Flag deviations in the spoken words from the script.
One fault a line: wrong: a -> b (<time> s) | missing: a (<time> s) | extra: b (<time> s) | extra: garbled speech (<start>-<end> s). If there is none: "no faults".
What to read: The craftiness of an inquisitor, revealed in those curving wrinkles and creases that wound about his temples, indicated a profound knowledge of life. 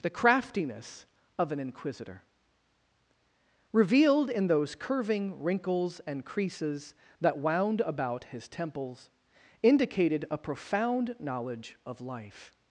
no faults